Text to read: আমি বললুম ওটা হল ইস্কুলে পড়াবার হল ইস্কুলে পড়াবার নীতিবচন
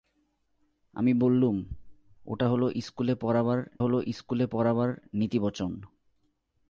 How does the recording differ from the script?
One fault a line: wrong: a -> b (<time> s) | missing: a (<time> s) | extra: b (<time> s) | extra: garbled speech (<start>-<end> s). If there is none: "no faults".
no faults